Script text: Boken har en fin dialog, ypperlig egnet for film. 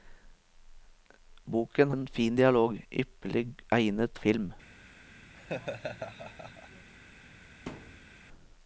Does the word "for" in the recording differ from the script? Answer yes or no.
yes